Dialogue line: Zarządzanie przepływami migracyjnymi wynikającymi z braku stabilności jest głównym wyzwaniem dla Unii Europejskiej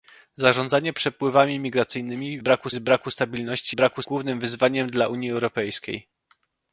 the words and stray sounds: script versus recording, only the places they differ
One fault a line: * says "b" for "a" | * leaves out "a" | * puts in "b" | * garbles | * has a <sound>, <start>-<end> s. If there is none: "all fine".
* says "braku" for "wynikającymi"
* says "braku" for "jest"